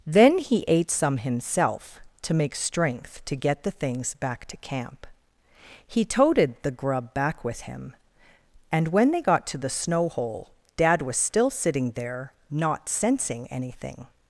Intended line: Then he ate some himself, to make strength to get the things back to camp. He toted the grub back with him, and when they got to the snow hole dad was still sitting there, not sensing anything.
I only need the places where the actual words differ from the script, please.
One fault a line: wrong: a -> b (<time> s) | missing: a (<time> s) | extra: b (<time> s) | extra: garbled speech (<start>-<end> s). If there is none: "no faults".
no faults